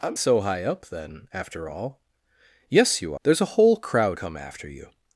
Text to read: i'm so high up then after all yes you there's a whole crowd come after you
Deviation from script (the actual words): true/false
false